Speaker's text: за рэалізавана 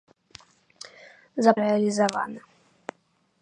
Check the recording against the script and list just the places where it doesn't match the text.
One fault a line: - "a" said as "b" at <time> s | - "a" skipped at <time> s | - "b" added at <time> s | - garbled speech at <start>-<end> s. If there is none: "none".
none